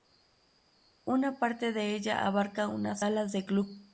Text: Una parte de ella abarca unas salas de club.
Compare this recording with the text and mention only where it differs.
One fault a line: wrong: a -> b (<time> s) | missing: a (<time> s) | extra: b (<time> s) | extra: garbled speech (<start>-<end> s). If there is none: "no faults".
no faults